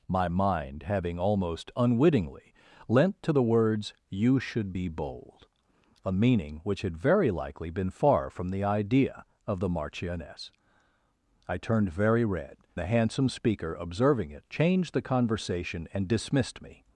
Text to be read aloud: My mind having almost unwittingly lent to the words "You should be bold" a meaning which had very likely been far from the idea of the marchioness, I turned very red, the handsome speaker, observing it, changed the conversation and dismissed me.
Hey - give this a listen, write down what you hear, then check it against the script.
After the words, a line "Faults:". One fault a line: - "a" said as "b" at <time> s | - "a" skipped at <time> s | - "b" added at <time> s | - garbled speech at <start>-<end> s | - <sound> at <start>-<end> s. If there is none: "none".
My mind having almost unwittingly lent to the words "You should be bold" a meaning which had very likely been far from the idea of the marchioness, I turned very red, the handsome speaker, observing it, changed the conversation and dismissed me.
Faults:
none